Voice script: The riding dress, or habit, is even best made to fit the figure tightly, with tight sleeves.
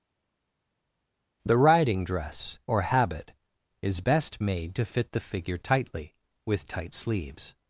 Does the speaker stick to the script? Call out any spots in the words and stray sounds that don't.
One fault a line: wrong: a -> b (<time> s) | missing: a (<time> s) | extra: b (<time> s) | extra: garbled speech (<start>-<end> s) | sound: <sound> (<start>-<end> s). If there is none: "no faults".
missing: even (4.0 s)